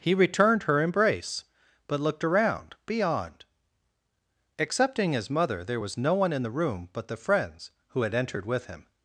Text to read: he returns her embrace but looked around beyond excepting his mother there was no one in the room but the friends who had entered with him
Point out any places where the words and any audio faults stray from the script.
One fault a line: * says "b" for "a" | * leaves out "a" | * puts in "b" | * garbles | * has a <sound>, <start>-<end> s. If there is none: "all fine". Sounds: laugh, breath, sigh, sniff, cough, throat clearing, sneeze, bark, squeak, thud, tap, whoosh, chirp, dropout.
* says "returned" for "returns"